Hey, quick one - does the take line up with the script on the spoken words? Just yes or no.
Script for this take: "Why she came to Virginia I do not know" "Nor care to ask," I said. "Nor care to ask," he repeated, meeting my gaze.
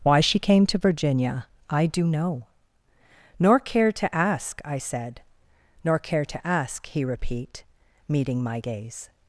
no